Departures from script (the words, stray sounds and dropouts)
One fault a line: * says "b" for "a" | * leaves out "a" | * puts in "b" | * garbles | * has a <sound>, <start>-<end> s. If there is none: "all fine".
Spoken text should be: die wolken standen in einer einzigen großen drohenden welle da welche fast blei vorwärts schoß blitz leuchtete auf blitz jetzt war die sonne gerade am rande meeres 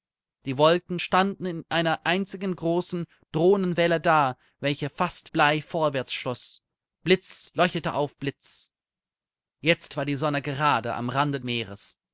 all fine